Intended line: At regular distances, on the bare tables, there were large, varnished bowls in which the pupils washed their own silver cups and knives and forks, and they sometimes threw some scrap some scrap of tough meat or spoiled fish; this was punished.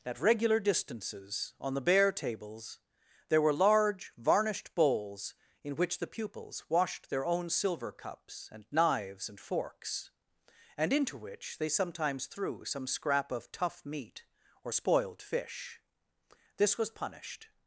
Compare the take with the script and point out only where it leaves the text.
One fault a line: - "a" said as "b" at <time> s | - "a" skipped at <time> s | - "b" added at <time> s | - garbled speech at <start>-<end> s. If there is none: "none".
- "into which" added at 10.9 s
- "some scrap" skipped at 13.3 s